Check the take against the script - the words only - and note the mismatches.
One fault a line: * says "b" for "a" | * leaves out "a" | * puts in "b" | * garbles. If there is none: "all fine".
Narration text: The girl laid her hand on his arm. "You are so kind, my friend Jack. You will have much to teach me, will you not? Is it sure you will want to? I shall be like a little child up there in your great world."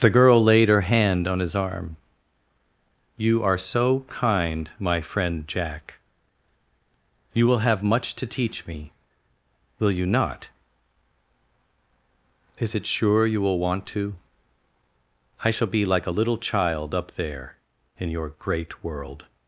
all fine